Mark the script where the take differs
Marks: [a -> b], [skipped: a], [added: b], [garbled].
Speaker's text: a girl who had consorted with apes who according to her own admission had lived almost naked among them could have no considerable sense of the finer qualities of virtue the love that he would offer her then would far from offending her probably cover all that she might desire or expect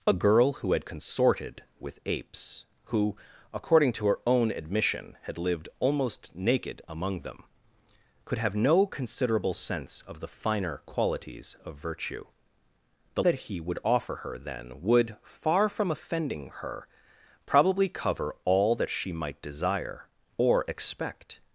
a girl who had consorted with apes who according to her own admission had lived almost naked among them could have no considerable sense of the finer qualities of virtue the [skipped: love] that he would offer her then would far from offending her probably cover all that she might desire or expect